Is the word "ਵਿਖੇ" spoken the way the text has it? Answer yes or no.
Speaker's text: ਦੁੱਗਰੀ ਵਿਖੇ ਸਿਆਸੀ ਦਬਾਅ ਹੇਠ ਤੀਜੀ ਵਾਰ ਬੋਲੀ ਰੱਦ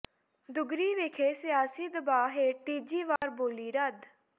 yes